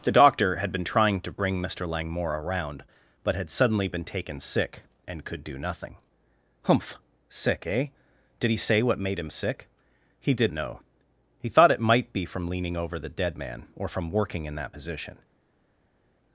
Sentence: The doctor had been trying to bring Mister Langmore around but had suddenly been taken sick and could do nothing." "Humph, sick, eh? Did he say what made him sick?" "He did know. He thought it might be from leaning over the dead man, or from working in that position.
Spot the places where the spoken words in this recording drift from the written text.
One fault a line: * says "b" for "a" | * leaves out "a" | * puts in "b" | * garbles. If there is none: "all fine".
all fine